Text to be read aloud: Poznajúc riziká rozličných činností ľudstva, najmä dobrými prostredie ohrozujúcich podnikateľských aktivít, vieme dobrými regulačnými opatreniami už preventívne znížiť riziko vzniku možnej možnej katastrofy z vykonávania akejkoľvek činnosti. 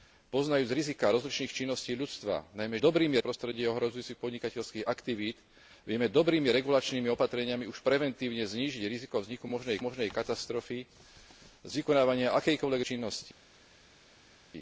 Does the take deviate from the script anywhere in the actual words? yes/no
no